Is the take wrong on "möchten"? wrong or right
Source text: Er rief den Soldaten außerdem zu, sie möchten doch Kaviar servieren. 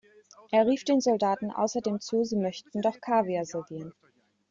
right